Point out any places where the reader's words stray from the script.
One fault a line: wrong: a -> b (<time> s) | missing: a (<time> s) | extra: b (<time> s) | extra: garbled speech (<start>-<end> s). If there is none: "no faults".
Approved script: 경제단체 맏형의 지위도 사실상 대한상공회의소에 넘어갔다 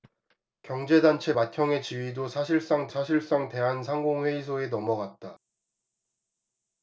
extra: 사실상 (2.9 s)